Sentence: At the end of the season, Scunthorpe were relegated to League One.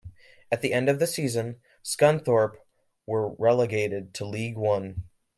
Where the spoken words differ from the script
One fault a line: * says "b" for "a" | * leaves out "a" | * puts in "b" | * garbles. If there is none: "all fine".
all fine